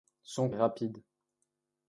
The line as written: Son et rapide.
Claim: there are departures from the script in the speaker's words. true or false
false